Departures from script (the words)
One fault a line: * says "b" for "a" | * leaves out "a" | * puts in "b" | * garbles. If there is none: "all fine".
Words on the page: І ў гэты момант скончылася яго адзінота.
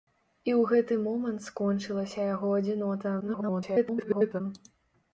* garbles